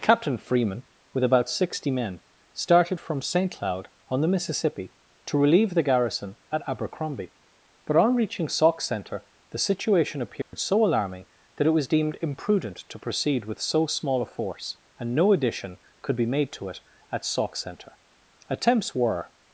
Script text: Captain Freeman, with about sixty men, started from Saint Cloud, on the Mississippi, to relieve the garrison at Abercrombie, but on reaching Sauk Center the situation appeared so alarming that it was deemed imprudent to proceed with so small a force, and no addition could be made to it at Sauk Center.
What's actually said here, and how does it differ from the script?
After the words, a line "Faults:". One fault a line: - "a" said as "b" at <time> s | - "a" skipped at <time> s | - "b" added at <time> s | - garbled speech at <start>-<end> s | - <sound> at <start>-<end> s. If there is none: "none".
Captain Freeman, with about sixty men, started from Saint Cloud, on the Mississippi, to relieve the garrison at Abercrombie, but on reaching Sauk Center the situation appeared so alarming that it was deemed imprudent to proceed with so small a force, and no addition could be made to it at Sauk Center. Attempts were
Faults:
- dropout at 10.4-10.5 s
- "Attempts were" added at 18.5 s